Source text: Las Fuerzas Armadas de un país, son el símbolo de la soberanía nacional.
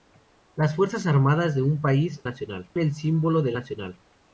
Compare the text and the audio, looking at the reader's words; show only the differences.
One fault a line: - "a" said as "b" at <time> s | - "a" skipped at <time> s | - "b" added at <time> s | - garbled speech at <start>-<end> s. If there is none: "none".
- "son" said as "nacional" at 2.2 s
- "la soberanía" skipped at 3.5 s